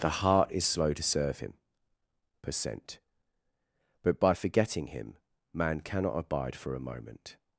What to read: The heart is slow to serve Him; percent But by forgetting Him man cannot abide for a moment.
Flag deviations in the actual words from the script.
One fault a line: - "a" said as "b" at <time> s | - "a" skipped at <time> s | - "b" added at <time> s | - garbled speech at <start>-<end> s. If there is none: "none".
none